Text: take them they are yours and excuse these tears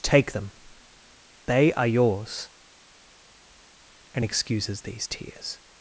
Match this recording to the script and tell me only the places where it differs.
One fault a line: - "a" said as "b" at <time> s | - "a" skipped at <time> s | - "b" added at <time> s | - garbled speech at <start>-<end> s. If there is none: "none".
- "excuse" said as "excuses" at 4.2 s